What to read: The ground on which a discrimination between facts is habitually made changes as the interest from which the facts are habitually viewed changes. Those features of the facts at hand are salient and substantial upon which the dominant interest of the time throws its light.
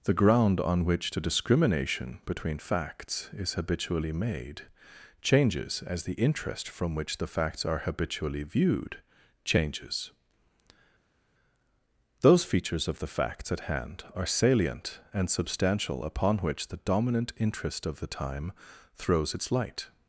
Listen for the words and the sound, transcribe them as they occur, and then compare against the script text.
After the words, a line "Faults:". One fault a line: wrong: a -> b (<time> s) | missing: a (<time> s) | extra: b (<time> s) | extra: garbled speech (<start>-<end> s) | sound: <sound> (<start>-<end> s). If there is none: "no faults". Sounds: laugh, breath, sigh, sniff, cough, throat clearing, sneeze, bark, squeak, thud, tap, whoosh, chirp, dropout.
The ground on which the discrimination between facts is habitually made changes as the interest from which the facts are habitually viewed changes. Those features of the facts at hand are salient and substantial upon which the dominant interest of the time throws its light.
Faults:
wrong: a -> the (1.1 s)